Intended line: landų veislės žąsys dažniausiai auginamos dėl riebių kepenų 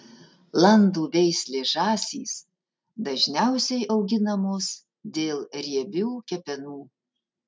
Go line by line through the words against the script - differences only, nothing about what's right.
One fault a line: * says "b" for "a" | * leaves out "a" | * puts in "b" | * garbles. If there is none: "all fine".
all fine